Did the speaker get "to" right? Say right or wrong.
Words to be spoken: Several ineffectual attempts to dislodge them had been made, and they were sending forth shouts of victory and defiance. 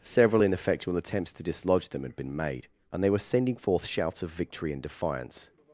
right